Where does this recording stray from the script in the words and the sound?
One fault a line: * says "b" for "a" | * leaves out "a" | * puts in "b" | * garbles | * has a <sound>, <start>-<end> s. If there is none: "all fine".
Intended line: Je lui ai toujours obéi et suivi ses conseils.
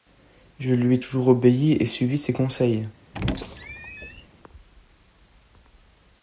* has a squeak, 3.1-4.3 s